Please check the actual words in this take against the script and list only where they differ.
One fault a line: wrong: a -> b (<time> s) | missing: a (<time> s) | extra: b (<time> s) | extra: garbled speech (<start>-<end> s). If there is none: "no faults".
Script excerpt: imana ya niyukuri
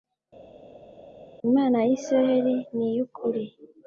extra: isirayeli (2.0 s)